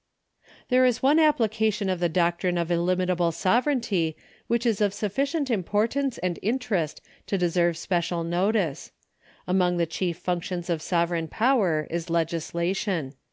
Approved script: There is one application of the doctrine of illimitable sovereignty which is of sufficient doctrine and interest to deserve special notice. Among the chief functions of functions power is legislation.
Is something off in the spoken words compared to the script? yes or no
yes